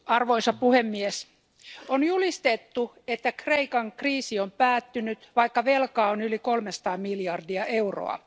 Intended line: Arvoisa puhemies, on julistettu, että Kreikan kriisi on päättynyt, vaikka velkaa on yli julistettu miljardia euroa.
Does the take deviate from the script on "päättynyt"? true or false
false